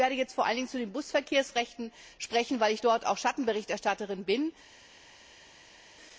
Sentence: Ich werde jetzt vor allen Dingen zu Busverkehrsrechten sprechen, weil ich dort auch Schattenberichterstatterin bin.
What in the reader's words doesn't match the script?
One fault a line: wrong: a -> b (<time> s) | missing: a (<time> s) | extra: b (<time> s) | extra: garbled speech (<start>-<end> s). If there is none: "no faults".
extra: den (0.8 s)